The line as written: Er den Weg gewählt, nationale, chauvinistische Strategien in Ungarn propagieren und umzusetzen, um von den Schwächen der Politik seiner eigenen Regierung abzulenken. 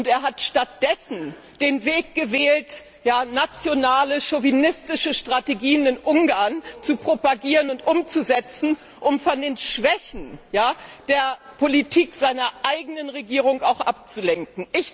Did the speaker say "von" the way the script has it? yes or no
yes